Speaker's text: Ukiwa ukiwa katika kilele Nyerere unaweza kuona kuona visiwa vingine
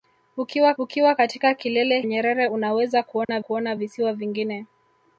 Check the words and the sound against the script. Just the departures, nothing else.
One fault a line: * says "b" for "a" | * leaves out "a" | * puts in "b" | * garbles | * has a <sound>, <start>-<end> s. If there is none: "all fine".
* has a dropout, 3.2-3.3 s